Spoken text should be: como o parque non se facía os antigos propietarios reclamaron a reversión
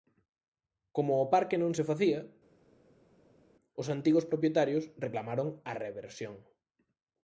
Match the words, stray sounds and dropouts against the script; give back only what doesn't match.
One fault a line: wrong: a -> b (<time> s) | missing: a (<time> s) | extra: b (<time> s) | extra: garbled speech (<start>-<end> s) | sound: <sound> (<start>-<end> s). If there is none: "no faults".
no faults